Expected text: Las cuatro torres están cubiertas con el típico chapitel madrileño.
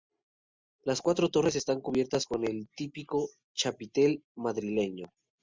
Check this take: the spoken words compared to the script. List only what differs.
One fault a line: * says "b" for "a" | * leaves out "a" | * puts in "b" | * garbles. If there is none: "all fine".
all fine